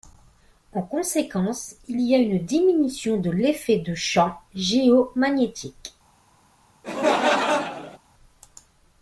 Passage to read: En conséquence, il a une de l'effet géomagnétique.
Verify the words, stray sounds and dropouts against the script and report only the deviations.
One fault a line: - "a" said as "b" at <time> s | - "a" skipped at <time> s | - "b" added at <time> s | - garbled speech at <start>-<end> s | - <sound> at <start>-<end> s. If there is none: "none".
- "y" added at 2.0 s
- "diminution" added at 2.4 s
- "de champ" added at 3.8 s
- laugh at 6.8-8.0 s